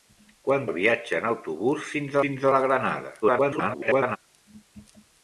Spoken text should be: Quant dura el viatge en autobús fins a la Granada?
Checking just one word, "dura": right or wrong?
wrong